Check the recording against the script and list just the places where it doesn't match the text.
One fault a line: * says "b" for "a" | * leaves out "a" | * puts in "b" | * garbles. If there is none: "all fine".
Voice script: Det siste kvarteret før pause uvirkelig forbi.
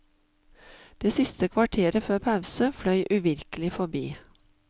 * puts in "fløy"